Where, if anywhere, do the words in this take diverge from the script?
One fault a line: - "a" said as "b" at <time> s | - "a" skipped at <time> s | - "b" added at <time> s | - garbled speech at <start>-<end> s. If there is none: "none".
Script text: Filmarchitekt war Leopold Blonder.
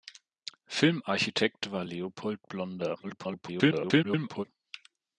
- garbled speech at 3.0-4.4 s